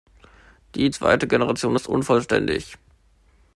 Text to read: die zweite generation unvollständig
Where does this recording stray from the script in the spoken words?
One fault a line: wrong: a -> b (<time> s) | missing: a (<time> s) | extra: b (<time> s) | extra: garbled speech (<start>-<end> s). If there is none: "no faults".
extra: ist (1.7 s)